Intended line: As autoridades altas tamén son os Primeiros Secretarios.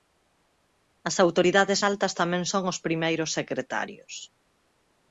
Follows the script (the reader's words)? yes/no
yes